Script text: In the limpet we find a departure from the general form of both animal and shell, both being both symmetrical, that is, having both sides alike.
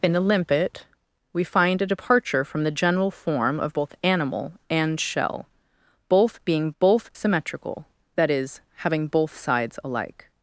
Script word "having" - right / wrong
right